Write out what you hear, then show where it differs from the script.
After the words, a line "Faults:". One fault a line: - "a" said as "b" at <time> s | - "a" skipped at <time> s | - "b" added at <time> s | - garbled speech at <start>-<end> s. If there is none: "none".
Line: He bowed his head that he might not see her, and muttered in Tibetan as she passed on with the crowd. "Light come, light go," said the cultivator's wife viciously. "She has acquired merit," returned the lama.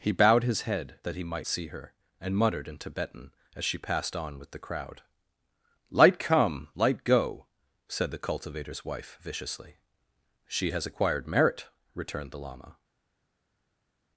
He bowed his head that he might see her, and muttered in Tibetan as she passed on with the crowd. "Light come, light go," said the cultivator's wife viciously. "She has acquired merit," returned the lama.
Faults:
- "not" skipped at 1.5 s